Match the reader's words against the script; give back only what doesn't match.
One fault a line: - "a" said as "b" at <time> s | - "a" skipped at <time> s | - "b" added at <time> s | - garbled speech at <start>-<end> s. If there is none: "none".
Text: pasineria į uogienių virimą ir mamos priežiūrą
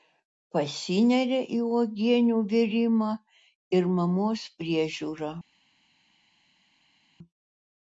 none